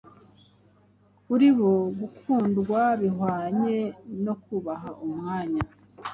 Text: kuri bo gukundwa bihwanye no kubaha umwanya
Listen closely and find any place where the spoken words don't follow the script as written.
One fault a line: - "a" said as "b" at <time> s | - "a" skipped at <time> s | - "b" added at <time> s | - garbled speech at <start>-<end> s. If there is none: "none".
none